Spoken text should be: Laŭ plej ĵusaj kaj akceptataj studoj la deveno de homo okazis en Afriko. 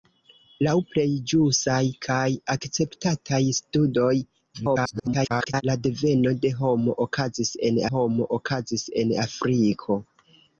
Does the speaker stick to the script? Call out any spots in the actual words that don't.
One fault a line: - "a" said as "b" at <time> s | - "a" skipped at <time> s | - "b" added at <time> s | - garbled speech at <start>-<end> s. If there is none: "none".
- garbled speech at 4.5-5.6 s
- "homo okazis en" added at 7.9 s